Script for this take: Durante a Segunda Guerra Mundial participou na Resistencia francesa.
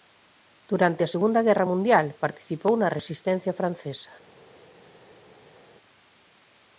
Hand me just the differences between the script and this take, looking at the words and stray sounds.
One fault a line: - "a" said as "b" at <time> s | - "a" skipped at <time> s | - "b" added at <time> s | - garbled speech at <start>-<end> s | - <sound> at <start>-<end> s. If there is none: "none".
none